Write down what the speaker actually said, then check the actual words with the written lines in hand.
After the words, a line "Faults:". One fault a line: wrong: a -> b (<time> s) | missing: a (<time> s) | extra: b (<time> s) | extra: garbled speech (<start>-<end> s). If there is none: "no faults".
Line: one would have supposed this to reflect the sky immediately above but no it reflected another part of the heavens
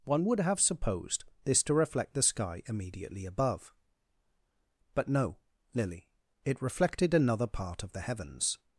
one would have supposed this to reflect the sky immediately above but no lily it reflected another part of the heavens
Faults:
extra: lily (5.7 s)